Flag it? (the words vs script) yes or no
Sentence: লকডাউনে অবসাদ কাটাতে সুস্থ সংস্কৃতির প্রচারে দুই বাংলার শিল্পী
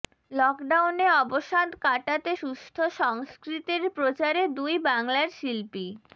no